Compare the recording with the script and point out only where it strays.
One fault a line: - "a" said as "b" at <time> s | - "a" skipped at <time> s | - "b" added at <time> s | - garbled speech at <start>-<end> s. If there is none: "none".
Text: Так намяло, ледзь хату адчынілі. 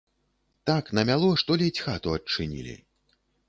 - "што" added at 1.4 s